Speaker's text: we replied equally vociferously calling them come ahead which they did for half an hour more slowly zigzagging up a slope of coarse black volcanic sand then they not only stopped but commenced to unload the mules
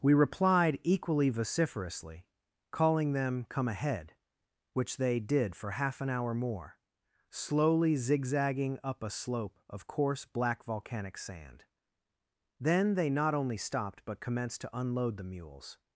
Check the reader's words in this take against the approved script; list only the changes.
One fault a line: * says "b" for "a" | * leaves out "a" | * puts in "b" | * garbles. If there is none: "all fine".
all fine